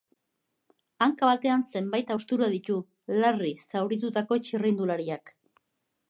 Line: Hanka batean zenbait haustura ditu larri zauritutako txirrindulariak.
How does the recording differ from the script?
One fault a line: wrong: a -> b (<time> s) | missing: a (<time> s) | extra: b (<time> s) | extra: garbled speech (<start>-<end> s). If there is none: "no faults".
no faults